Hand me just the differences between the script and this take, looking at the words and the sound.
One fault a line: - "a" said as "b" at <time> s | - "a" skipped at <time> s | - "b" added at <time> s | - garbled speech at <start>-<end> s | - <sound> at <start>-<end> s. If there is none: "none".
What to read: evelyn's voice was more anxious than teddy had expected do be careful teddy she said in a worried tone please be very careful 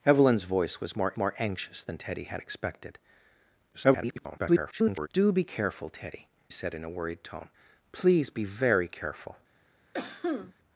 - "more" added at 1.2 s
- garbled speech at 3.7-5.1 s
- "she" skipped at 6.3 s
- cough at 9.9-10.5 s